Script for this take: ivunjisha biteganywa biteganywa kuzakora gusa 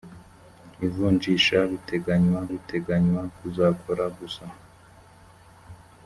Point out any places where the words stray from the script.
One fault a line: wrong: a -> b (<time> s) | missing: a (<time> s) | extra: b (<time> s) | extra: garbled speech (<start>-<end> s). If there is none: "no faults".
no faults